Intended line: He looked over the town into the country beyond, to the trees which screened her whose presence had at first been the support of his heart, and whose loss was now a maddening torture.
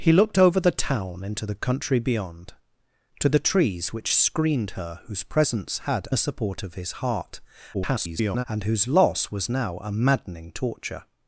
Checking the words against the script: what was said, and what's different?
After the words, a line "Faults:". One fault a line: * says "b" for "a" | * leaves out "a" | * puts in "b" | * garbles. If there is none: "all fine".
He looked over the town into the country beyond, to the trees which screened her whose presence had the support of his heart, [garbled] and whose loss was now a maddening torture.
Faults:
* leaves out "at first been"
* garbles